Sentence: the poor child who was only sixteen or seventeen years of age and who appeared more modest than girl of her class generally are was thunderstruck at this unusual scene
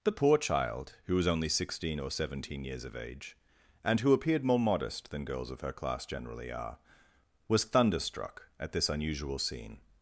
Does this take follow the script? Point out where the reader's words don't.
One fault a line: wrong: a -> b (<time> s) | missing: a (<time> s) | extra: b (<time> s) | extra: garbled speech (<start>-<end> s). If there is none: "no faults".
wrong: girl -> girls (5.3 s)